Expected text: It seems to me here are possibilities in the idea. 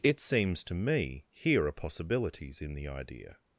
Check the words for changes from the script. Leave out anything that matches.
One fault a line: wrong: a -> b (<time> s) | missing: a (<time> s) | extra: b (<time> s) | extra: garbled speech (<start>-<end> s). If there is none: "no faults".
no faults